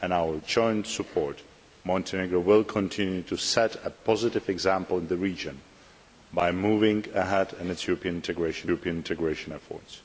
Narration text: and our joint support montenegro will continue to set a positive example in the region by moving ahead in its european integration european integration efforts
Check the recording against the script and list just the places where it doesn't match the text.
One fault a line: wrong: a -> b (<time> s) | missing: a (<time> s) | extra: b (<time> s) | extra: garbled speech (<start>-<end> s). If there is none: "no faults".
no faults